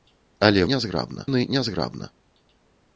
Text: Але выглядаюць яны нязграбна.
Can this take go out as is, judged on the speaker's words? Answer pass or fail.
fail